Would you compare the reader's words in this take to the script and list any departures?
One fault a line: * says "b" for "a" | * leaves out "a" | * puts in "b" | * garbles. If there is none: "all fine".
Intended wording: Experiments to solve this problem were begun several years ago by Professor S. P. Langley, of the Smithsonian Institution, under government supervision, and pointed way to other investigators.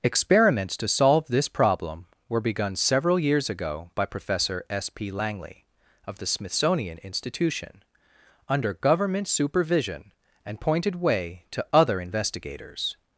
all fine